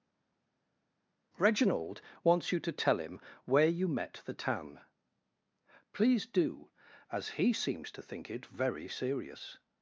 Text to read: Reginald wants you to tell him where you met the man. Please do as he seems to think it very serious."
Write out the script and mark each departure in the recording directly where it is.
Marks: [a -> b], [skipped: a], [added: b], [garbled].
Reginald wants you to tell him where you met the [man. -> tan] Please do as he seems to think it very serious."